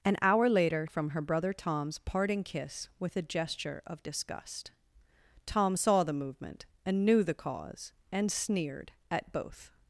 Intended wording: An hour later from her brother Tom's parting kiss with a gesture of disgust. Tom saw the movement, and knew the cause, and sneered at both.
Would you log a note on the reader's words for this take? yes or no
no